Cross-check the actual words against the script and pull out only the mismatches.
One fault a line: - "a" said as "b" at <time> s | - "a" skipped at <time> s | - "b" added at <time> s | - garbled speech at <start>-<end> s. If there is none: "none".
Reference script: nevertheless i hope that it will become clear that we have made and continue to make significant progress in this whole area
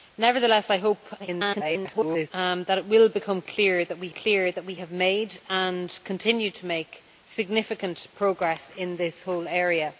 - garbled speech at 1.2-2.3 s
- "clear that we" added at 4.1 s